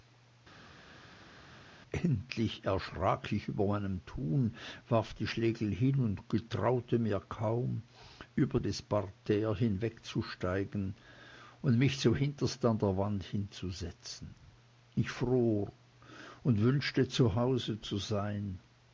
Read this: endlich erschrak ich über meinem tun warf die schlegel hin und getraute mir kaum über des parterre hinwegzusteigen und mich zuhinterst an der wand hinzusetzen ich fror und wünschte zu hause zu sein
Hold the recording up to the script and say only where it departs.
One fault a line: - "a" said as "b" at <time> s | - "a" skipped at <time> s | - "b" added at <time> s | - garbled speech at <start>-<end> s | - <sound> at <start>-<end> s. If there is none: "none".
none